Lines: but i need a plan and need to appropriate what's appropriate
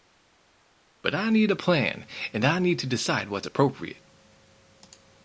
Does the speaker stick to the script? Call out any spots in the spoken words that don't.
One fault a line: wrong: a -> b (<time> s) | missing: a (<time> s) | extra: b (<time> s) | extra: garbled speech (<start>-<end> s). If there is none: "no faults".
extra: i (2.4 s)
wrong: appropriate -> decide (2.9 s)